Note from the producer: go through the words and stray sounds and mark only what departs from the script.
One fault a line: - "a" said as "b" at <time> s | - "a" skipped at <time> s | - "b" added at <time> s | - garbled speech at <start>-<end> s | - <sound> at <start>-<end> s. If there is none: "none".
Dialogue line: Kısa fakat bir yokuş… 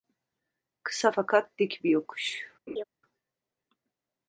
- "dik" added at 1.6 s
- laugh at 2.7-2.8 s